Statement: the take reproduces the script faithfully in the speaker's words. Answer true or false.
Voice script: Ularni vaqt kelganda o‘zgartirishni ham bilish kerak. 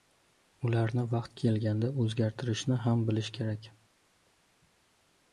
true